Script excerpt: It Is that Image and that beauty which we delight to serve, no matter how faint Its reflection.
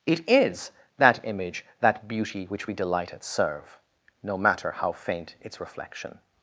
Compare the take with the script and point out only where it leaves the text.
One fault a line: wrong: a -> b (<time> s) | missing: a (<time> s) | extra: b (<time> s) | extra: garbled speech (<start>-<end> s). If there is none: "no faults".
missing: and (1.6 s)
wrong: to -> at (3.1 s)